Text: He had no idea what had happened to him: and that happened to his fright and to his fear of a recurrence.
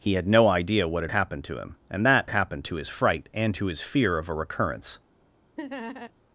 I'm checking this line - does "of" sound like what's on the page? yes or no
yes